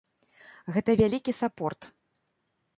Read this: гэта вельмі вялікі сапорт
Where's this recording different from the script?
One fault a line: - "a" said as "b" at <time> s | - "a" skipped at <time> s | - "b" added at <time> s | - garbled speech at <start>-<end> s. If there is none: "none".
- "вельмі" skipped at 0.9 s